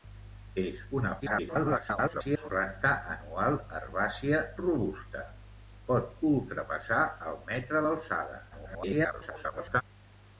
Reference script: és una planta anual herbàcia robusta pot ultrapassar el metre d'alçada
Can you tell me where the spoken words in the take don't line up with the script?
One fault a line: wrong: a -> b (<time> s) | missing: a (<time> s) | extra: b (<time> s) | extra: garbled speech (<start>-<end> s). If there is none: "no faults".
extra: garbled speech (1.2-2.5 s)
extra: garbled speech (8.5-9.8 s)